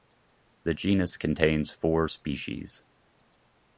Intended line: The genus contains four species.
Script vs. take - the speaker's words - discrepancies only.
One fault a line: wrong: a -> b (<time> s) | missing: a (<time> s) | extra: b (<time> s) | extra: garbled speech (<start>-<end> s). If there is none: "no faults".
no faults